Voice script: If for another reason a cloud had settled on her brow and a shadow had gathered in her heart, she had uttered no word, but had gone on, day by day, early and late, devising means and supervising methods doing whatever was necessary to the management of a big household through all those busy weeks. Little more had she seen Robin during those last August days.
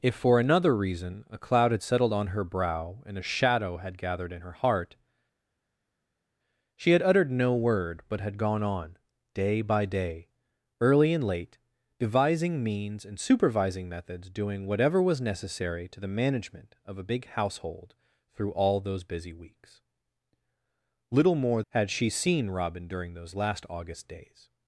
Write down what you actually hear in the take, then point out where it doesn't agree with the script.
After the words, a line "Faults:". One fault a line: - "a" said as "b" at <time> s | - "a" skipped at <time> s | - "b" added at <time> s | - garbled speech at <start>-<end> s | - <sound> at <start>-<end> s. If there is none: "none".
If for another reason a cloud had settled on her brow and a shadow had gathered in her heart, she had uttered no word, but had gone on, day by day, early and late, devising means and supervising methods doing whatever was necessary to the management of a big household through all those busy weeks. Little more had she seen Robin during those last August days.
Faults:
none